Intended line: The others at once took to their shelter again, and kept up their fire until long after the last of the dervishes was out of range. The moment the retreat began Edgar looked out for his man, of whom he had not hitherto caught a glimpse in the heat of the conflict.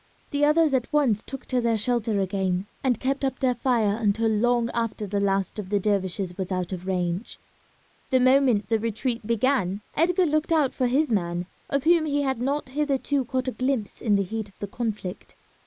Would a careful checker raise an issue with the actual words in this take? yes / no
no